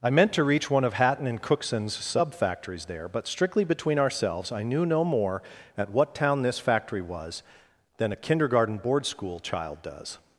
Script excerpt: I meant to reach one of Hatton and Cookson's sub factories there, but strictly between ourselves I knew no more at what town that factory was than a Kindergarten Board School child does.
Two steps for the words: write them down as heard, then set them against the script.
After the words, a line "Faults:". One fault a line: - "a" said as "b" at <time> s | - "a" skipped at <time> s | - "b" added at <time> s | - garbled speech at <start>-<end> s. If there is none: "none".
I meant to reach one of Hatton and Cookson's sub factories there, but strictly between ourselves I knew no more at what town this factory was than a Kindergarten Board School child does.
Faults:
- "that" said as "this" at 6.4 s